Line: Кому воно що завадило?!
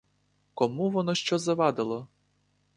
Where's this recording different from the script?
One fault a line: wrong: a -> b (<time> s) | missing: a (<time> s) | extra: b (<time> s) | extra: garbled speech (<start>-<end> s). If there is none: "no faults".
no faults